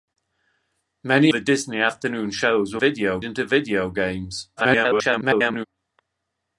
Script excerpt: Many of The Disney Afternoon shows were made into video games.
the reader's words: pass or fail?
fail